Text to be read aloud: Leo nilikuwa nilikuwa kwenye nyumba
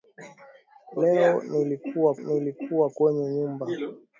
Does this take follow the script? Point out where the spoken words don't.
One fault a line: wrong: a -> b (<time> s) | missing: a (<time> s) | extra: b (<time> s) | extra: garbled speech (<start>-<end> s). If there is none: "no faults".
no faults